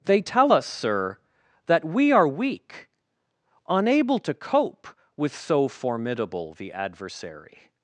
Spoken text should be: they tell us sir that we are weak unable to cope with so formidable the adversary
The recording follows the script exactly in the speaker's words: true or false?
true